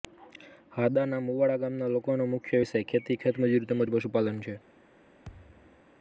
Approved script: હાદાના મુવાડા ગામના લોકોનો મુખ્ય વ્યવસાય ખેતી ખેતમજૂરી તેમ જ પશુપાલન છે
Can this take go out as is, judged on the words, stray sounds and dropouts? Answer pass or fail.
fail